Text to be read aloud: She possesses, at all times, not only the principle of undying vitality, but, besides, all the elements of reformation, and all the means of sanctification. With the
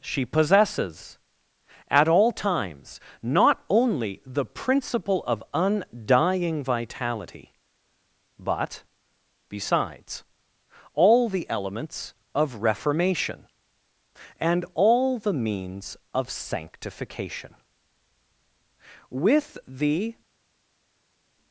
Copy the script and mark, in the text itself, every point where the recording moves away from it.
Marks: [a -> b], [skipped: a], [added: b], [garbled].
She possesses, at all times, not only the principle of undying vitality, but, besides, all the elements of reformation, and all the means of sanctification. With the